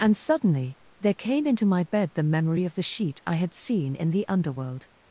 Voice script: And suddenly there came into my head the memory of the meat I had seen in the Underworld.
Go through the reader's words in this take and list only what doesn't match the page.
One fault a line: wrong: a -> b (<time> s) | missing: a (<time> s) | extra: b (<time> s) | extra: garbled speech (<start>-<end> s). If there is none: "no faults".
wrong: head -> bed (1.8 s)
wrong: meat -> sheet (2.8 s)